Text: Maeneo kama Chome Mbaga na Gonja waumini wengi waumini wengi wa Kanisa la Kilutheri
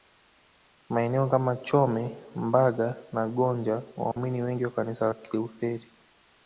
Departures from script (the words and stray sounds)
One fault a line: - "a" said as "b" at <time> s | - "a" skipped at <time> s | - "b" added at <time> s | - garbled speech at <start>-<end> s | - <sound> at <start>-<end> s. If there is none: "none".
- dropout at 4.1-4.2 s
- "waumini wengi" skipped at 4.7 s